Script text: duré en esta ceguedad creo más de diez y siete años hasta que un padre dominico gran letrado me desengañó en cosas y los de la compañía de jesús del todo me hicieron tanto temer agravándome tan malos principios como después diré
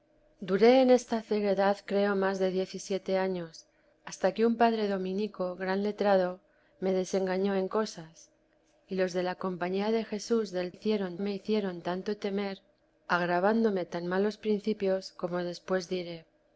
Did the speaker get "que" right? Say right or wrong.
right